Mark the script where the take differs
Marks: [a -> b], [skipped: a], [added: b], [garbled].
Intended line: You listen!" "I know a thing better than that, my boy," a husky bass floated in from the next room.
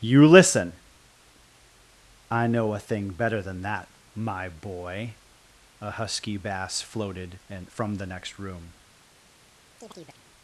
You listen!" "I know a thing better than that, my boy," a husky bass floated [in -> and] from the next room.